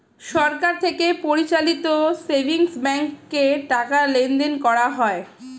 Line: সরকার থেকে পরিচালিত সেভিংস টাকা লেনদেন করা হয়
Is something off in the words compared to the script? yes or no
yes